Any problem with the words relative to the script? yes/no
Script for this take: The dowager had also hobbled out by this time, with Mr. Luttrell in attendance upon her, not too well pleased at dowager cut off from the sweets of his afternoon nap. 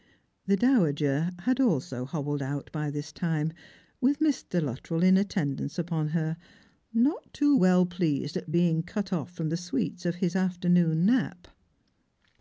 yes